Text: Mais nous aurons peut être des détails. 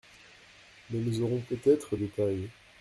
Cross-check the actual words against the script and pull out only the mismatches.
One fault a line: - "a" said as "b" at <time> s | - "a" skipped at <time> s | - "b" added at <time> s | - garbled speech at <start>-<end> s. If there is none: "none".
- "des" skipped at 1.9 s